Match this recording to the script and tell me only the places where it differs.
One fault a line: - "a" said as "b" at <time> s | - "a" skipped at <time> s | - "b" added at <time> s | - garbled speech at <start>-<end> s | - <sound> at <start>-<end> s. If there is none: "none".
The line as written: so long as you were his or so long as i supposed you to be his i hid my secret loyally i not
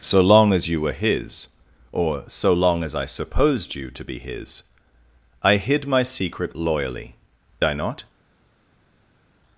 none